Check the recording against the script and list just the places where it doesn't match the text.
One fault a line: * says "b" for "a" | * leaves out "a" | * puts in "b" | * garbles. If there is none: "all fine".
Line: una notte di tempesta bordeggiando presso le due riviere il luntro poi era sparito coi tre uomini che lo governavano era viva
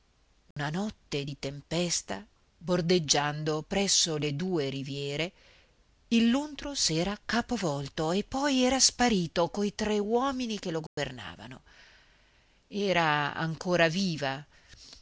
* puts in "s'era capovolto e"
* puts in "ancora"